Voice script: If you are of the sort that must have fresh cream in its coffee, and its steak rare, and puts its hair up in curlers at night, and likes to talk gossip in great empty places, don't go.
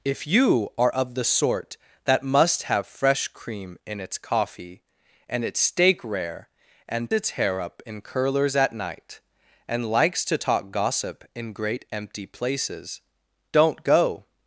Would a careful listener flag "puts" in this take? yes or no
yes